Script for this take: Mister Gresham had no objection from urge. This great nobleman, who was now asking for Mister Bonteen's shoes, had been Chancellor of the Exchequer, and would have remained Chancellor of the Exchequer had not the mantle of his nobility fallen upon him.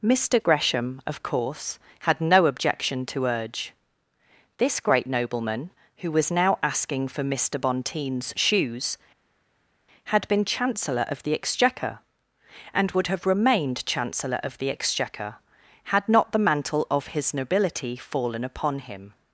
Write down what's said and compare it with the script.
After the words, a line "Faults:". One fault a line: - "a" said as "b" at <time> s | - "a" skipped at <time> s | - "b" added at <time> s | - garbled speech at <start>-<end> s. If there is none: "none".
Mister Gresham of course had no objection to urge. This great nobleman, who was now asking for Mister Bonteen's shoes, had been Chancellor of the Exchequer, and would have remained Chancellor of the Exchequer had not the mantle of his nobility fallen upon him.
Faults:
- "of course" added at 1.1 s
- "from" said as "to" at 3.0 s